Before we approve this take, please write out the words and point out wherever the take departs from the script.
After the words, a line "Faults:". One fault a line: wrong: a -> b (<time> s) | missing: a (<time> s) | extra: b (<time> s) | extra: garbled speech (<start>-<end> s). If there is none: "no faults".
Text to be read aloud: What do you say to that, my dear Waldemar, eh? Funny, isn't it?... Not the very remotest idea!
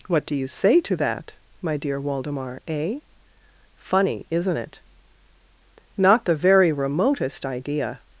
What do you say to that, my dear Waldemar, eh? Funny, isn't it?... Not the very remotest idea!
Faults:
no faults